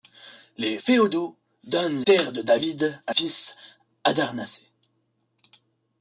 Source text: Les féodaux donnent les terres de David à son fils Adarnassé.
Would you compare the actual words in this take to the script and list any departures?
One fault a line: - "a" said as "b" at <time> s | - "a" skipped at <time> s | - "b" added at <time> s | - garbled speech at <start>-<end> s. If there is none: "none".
- "les" skipped at 2.0 s
- "son" skipped at 3.1 s